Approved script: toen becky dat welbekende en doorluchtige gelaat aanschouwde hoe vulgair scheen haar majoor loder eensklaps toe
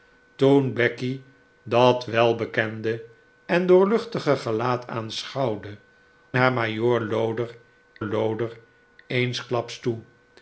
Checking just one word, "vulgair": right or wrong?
wrong